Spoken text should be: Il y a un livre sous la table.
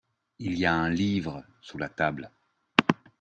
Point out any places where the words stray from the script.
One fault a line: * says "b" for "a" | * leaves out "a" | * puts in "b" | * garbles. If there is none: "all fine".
all fine